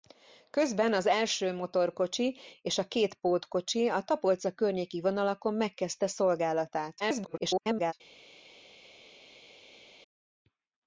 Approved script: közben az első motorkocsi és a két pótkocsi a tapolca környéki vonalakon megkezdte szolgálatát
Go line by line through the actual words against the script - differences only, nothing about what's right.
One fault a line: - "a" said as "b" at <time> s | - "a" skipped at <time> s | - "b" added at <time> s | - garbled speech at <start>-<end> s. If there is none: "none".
- garbled speech at 7.0-7.9 s